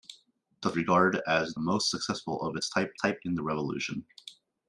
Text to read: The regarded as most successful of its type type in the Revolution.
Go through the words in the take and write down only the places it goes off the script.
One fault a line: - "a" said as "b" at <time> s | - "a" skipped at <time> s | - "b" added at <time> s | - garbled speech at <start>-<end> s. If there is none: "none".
none